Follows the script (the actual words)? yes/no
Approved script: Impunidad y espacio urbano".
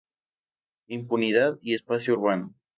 yes